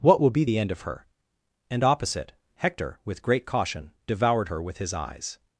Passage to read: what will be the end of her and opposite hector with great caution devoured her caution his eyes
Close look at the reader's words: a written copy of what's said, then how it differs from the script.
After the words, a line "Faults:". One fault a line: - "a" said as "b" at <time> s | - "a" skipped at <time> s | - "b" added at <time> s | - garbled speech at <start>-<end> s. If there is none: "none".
what will be the end of her and opposite hector with great caution devoured her with his eyes
Faults:
- "caution" said as "with" at 4.6 s